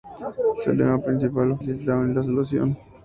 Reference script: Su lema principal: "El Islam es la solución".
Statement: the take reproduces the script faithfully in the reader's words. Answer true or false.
true